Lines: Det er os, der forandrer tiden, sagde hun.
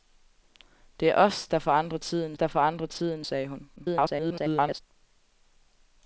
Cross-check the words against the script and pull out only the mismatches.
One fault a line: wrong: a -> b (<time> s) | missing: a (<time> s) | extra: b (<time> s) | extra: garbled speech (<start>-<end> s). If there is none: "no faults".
extra: der forandrer tiden (2.4 s)
extra: garbled speech (3.8-4.8 s)